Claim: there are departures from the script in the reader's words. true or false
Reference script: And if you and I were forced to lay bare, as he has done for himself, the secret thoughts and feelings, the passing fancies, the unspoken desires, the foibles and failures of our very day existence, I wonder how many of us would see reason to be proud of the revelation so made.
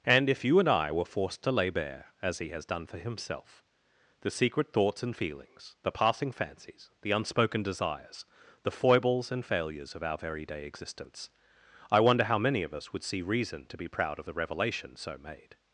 false